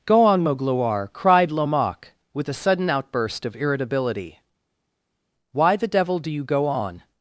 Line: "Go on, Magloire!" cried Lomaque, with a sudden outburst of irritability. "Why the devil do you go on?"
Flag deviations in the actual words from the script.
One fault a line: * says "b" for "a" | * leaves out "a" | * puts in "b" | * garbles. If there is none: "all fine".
all fine